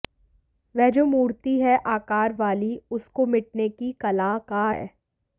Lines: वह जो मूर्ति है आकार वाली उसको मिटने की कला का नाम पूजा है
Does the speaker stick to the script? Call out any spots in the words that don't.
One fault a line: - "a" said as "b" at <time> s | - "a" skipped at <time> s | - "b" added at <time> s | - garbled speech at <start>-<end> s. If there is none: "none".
- "नाम पूजा" skipped at 4.7 s